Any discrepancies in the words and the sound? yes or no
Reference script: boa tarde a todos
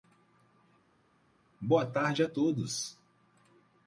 no